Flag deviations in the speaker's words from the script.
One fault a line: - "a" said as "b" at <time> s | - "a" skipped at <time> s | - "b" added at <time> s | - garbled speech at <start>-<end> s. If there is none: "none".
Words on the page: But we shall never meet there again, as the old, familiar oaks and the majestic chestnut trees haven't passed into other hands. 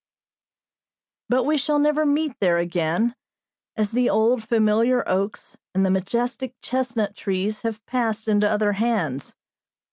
- "haven't" said as "have" at 7.6 s